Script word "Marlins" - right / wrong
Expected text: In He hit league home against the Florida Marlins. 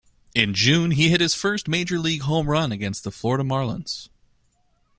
right